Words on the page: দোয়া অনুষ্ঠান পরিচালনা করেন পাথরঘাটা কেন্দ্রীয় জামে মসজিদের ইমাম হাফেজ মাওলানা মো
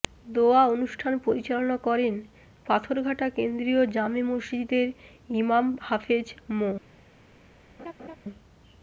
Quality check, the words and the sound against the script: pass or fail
fail